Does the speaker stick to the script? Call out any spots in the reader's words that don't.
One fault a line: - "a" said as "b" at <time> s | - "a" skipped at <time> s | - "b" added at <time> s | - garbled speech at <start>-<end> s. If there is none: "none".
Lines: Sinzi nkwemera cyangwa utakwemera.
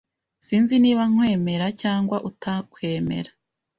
- "niba" added at 0.8 s